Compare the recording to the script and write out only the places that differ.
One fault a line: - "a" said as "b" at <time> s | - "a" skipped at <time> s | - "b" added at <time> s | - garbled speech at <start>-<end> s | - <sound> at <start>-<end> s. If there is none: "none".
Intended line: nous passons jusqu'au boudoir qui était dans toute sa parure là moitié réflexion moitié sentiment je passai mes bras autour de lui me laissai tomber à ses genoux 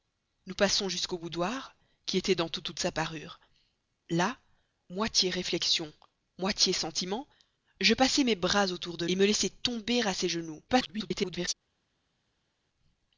- "toute" added at 2.6 s
- "lui" skipped at 9.1 s
- garbled speech at 10.7-11.5 s